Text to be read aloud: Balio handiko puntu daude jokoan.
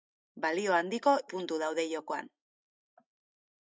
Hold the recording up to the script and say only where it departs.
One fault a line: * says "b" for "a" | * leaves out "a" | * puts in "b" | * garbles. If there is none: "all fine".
all fine